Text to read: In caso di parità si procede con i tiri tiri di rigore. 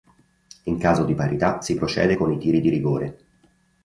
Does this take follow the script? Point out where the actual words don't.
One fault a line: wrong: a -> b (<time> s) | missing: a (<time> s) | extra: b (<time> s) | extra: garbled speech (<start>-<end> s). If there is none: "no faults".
missing: tiri (2.6 s)